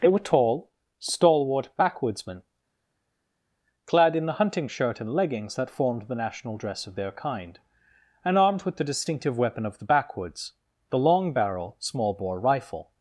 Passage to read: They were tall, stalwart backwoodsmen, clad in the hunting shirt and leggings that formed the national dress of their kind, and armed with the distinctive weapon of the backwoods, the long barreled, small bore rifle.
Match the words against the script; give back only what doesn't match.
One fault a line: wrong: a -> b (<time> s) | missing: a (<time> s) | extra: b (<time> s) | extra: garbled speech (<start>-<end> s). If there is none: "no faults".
wrong: barreled -> barrel (11.3 s)